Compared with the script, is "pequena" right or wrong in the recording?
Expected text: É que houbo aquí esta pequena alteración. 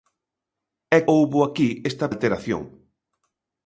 wrong